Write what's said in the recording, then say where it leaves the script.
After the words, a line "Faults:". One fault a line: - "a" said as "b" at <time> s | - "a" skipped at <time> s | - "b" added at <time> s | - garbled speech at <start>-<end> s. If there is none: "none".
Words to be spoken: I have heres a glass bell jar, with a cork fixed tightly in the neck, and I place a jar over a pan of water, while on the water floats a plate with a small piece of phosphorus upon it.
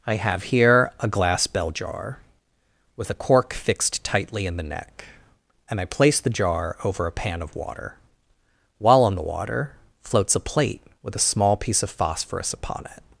I have here a glass bell jar, with a cork fixed tightly in the neck, and I place the jar over a pan of water, while on the water floats a plate with a small piece of phosphorus upon it.
Faults:
- "heres" said as "here" at 0.5 s
- "a" said as "the" at 6.2 s